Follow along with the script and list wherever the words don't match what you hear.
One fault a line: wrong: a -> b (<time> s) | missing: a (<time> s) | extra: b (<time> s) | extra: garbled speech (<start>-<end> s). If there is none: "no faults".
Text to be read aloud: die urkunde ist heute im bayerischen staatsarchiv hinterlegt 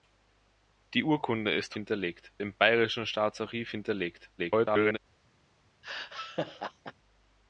wrong: heute -> hinterlegt (1.7 s)
extra: garbled speech (4.4-5.0 s)